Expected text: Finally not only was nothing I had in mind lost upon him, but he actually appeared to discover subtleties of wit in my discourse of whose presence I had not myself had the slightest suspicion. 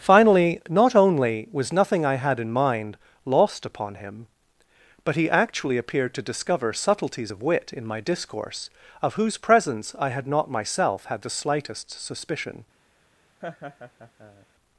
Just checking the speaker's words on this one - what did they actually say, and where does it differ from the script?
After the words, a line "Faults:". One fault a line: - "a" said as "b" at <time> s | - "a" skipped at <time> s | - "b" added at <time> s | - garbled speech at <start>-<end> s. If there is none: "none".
Finally not only was nothing I had in mind lost upon him, but he actually appeared to discover subtleties of wit in my discourse of whose presence I had not myself had the slightest suspicion.
Faults:
none